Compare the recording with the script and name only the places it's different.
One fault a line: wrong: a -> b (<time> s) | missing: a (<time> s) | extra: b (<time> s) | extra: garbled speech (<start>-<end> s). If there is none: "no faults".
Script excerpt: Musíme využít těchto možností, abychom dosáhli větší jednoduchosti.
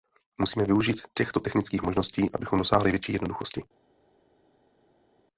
extra: technických (1.4 s)